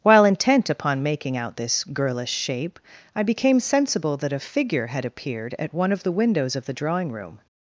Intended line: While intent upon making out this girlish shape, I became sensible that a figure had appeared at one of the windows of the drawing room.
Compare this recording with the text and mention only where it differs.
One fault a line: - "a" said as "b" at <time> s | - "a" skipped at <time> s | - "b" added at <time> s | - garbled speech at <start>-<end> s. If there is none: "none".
none